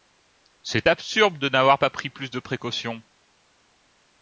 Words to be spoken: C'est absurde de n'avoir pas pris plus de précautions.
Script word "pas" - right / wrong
right